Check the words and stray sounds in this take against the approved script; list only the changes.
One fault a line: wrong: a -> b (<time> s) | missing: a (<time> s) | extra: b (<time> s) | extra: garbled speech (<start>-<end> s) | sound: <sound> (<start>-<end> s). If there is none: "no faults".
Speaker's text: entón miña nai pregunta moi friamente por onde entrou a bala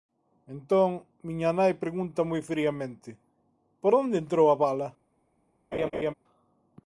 sound: laugh (5.7-6.1 s)